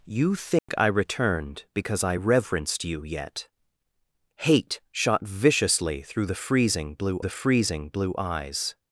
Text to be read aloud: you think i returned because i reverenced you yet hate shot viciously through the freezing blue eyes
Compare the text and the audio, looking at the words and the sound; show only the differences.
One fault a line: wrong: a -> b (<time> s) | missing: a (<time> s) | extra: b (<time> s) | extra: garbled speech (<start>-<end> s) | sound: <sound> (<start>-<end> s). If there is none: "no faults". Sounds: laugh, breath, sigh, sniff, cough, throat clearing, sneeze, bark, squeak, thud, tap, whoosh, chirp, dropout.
sound: dropout (0.6-0.7 s)
extra: the freezing blue (7.2 s)